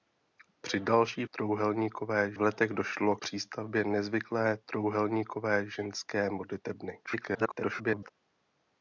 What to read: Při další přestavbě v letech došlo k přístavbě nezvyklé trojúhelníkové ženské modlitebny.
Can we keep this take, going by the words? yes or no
no